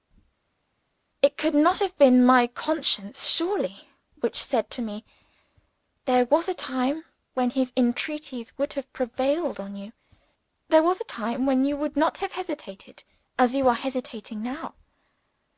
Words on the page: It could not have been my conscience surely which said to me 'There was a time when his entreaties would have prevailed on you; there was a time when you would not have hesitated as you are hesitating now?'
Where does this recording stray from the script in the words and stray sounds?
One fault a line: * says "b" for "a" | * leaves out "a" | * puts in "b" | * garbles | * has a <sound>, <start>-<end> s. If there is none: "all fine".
all fine